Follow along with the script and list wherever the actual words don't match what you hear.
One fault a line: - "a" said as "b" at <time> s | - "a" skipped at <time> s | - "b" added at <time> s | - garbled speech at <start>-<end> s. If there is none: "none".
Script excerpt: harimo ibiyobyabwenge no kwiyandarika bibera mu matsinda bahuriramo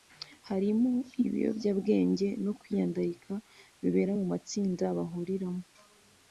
none